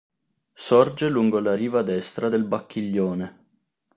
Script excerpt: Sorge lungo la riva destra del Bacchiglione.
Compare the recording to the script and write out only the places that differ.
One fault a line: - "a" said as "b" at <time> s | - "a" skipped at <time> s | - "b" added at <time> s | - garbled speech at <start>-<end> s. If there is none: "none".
none